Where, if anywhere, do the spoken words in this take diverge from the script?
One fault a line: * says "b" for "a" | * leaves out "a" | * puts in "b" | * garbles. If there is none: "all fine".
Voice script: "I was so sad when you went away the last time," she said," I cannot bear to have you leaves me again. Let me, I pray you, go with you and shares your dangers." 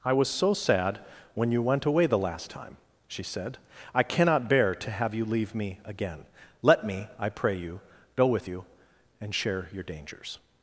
* says "leave" for "leaves"
* says "share" for "shares"